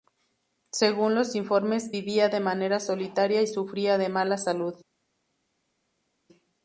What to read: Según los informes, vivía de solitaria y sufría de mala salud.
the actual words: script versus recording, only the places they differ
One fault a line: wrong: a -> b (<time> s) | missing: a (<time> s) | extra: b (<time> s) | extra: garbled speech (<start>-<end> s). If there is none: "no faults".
extra: manera (2.4 s)